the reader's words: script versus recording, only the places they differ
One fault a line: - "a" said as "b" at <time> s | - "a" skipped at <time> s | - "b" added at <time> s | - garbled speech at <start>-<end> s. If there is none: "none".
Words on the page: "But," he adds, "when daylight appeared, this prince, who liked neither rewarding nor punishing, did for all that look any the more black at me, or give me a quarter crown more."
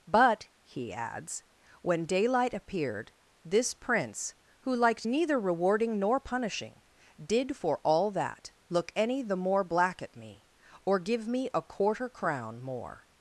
none